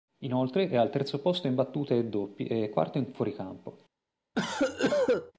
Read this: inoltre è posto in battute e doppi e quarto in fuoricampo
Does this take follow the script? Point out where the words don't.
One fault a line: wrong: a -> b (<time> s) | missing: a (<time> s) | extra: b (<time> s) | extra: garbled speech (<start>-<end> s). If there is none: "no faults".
extra: al terzo (0.8 s)